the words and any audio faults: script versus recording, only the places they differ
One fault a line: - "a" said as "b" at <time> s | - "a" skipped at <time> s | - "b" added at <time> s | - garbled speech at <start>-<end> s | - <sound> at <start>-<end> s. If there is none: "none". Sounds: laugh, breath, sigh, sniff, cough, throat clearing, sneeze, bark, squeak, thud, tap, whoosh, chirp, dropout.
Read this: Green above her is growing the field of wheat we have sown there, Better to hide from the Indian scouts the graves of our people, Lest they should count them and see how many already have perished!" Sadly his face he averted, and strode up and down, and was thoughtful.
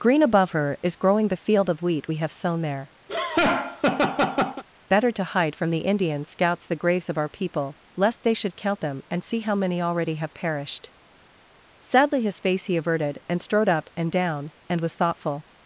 - laugh at 3.1-4.6 s